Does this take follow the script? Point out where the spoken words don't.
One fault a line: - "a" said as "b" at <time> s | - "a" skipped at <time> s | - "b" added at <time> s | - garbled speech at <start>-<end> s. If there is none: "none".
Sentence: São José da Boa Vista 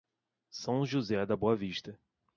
none